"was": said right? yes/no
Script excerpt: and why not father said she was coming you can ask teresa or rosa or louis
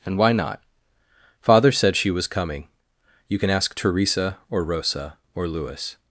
yes